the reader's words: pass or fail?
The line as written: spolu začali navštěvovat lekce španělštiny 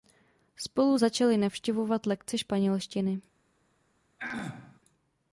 pass